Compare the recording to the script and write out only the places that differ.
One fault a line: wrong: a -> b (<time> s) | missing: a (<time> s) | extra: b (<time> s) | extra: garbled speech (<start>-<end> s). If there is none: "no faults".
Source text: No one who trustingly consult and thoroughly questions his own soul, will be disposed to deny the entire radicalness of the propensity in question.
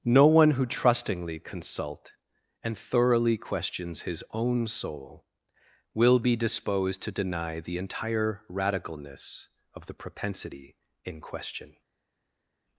no faults